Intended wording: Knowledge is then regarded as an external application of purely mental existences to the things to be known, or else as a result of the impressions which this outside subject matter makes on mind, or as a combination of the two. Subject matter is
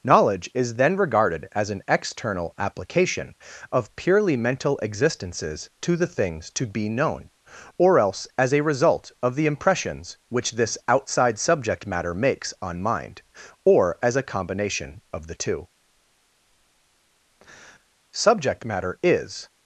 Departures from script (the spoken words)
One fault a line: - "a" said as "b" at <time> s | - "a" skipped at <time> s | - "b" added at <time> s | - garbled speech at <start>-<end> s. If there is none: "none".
none